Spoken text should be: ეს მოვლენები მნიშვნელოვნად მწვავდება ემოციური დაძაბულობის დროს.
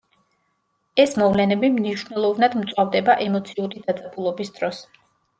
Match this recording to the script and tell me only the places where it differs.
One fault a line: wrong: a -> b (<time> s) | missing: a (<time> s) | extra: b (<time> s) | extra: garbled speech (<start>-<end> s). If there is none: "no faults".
no faults